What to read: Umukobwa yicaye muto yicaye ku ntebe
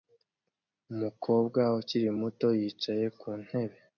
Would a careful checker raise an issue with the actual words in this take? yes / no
yes